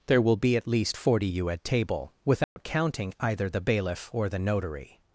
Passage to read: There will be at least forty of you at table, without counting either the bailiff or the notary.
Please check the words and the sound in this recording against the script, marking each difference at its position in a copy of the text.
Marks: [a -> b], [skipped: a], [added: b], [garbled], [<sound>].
There will be at least forty [skipped: of] you at table, without [dropout] counting either the bailiff or the notary.